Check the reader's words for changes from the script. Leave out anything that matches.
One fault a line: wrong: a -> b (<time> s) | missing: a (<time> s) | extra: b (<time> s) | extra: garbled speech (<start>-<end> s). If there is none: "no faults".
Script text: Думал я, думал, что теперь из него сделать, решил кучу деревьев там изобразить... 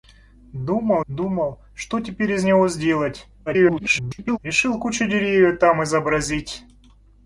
missing: я (1.0 s)
extra: garbled speech (3.5-4.4 s)